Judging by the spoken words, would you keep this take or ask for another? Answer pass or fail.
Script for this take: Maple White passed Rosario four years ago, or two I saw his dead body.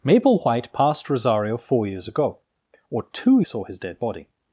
pass